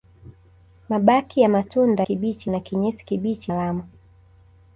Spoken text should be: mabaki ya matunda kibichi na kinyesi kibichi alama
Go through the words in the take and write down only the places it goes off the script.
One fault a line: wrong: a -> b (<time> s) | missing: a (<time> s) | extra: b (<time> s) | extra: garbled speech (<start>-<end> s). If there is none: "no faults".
no faults